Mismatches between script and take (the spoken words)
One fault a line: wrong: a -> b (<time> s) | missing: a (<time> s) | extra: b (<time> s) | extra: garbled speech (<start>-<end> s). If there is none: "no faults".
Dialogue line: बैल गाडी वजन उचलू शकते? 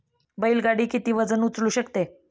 extra: किती (0.9 s)